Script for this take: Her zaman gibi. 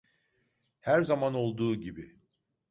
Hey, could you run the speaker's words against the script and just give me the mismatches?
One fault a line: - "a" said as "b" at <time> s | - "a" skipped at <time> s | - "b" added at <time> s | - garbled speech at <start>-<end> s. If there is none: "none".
- "olduğu" added at 1.3 s